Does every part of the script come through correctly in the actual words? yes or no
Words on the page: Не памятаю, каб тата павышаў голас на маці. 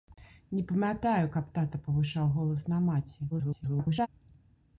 no